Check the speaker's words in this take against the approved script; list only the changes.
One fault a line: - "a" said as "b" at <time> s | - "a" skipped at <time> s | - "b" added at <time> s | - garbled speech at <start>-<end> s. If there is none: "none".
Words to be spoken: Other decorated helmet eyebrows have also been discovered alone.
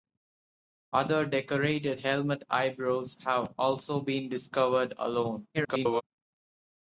- garbled speech at 5.5-6.0 s